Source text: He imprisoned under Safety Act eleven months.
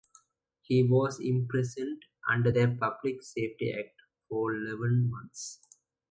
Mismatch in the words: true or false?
true